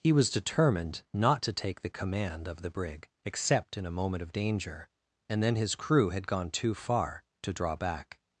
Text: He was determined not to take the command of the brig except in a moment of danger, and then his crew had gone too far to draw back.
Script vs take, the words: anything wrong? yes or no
no